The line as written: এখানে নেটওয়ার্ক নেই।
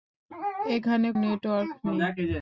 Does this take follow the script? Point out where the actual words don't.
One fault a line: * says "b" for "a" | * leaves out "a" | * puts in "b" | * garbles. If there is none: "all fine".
all fine